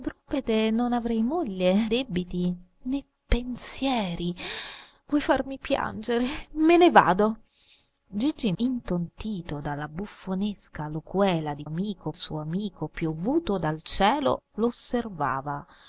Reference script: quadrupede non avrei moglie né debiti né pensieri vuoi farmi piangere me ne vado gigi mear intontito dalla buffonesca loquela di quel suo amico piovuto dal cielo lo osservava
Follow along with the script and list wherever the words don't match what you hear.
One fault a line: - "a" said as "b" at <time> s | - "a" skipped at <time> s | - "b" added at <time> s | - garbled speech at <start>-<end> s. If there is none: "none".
- "né" skipped at 1.9 s
- "mear" skipped at 8.5 s
- "quel" said as "amico" at 11.6 s